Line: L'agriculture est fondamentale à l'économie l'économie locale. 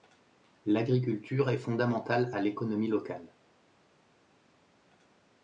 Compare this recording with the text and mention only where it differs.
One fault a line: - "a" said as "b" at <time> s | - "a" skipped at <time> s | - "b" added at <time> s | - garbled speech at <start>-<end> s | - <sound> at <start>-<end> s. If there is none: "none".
- "l'économie" skipped at 2.9 s